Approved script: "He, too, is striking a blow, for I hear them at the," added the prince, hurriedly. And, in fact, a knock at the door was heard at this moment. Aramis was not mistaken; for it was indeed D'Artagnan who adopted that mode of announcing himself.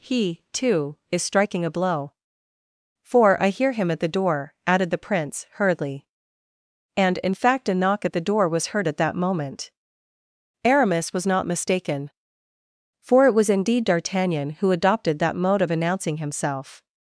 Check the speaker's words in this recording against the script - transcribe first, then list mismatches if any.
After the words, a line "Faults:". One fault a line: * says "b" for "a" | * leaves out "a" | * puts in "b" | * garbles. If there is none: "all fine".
"He, too, is striking a blow, for I hear him at the door," added the prince, hurriedly. And, in fact, a knock at the door was heard at that moment. Aramis was not mistaken; for it was indeed D'Artagnan who adopted that mode of announcing himself.
Faults:
* says "him" for "them"
* puts in "door"
* says "that" for "this"